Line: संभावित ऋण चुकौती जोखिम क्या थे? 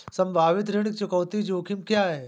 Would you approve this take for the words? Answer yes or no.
no